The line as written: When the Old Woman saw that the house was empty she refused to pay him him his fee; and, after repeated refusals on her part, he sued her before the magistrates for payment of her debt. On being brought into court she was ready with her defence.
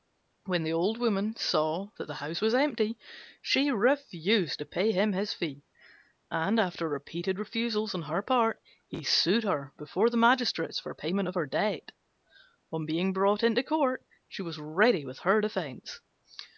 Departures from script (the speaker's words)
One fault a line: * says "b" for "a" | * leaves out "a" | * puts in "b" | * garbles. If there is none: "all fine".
* leaves out "him"